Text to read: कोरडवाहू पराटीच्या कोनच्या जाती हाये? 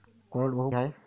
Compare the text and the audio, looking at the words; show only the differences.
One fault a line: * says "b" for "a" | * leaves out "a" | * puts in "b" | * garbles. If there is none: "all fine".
* leaves out "पराटीच्या कोनच्या जाती"